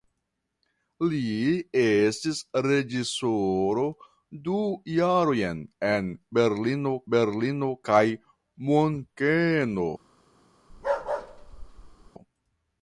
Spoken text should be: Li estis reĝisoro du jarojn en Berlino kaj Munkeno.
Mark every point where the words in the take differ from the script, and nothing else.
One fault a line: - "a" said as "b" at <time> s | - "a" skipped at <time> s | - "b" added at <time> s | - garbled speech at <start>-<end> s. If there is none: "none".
- "Berlino" added at 7.2 s